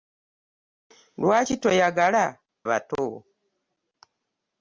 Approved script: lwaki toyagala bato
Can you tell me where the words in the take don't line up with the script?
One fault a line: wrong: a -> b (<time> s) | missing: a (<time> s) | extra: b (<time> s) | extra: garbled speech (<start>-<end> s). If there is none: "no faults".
no faults